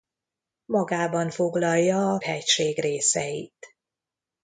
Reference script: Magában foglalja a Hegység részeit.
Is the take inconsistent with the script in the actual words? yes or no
no